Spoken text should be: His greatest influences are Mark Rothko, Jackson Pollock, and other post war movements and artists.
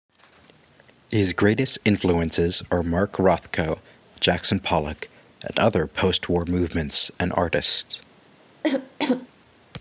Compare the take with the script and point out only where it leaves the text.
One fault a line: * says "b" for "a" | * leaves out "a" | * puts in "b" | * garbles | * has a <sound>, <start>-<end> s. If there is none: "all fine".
* has a cough, 8.6-9.3 s